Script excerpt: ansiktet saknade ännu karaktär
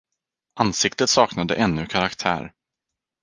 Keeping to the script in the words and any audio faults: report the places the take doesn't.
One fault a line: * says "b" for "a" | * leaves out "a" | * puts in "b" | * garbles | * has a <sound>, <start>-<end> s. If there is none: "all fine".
all fine